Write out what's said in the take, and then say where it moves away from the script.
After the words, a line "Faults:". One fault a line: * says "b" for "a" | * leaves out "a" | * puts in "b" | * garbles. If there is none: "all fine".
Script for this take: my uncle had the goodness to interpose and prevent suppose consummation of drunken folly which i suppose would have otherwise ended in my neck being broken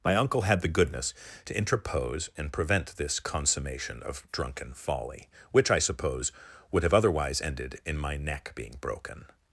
my uncle had the goodness to interpose and prevent this consummation of drunken folly which i suppose would have otherwise ended in my neck being broken
Faults:
* says "this" for "suppose"